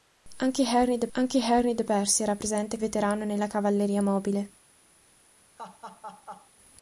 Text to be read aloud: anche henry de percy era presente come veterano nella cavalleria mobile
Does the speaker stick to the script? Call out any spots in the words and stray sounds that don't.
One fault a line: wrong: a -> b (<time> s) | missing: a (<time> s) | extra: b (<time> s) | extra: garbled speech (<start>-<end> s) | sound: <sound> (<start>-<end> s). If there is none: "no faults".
extra: anche henry de (1.1 s)
missing: come (2.8 s)
sound: laugh (5.6-6.5 s)